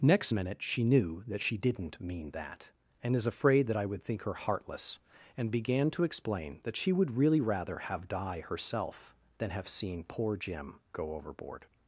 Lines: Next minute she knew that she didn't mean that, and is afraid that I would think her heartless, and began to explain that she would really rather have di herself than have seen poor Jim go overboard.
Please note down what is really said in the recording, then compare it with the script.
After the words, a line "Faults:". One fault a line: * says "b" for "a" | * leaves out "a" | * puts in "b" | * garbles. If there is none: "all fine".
Next minute she knew that she didn't mean that, and is afraid that I would think her heartless, and began to explain that she would really rather have di herself than have seen poor Jim go overboard.
Faults:
all fine